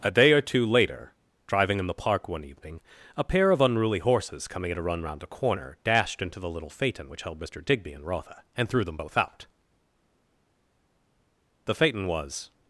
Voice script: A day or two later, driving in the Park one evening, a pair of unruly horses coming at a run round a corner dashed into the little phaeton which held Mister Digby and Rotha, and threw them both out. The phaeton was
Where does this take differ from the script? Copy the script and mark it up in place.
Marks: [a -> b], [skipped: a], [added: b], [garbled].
A day or two later, driving in the Park one evening, a pair of unruly horses coming at a run round a corner dashed into the little phaeton which held Mister Digby and Rotha, and threw them both out. The phaeton was